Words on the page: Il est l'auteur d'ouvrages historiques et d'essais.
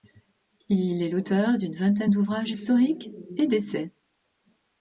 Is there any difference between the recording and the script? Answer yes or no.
yes